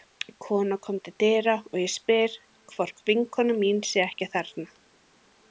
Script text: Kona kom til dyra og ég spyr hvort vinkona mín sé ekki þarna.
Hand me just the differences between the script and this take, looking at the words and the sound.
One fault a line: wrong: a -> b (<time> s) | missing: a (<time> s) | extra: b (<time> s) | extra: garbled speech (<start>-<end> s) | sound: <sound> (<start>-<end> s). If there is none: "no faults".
no faults